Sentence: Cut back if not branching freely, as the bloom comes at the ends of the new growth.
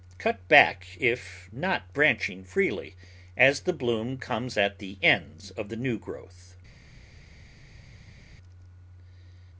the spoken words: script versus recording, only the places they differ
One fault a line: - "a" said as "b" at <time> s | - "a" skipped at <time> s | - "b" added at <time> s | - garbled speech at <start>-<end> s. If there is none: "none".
none